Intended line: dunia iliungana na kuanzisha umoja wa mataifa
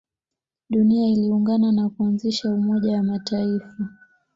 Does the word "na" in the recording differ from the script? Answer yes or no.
no